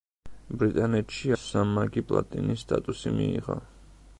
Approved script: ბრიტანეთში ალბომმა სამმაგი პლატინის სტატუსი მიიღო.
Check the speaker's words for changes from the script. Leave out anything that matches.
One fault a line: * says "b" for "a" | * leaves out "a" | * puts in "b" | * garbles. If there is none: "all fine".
* leaves out "ალბომმა"